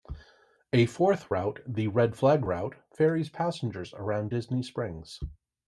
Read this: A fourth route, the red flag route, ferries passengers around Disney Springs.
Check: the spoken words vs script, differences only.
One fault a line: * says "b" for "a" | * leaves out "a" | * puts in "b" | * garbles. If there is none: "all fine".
all fine